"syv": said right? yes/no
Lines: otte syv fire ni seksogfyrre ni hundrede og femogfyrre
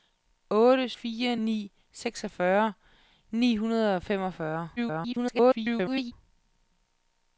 no